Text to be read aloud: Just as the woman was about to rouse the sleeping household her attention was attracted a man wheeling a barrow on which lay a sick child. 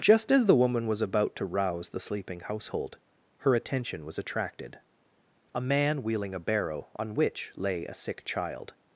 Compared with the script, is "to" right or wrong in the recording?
right